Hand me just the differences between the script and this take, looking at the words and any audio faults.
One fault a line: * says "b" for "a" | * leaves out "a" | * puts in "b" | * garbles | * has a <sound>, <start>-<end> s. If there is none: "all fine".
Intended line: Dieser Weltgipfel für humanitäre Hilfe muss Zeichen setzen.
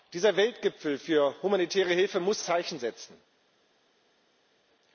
all fine